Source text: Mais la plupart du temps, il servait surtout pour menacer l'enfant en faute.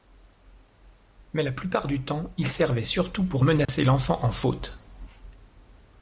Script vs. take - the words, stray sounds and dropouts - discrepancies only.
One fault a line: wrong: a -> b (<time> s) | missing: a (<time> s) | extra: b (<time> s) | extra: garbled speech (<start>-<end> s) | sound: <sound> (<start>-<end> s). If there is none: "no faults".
sound: dropout (3.7-3.7 s)